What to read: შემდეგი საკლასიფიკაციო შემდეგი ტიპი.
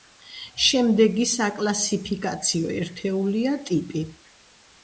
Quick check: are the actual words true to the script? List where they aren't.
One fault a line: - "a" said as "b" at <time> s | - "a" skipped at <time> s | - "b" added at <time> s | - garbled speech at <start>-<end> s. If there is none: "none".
- "შემდეგი" said as "ერთეულია" at 2.8 s